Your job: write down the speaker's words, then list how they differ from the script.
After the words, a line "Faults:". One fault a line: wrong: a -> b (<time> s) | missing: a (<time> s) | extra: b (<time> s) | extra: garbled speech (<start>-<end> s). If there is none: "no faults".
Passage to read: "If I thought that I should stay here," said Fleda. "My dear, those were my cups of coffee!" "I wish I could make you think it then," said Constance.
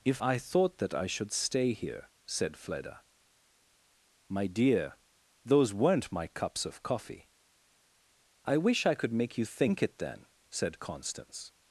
"If I thought that I should stay here," said Fleda. "My dear, those weren't my cups of coffee!" "I wish I could make you think it then," said Constance.
Faults:
wrong: were -> weren't (5.7 s)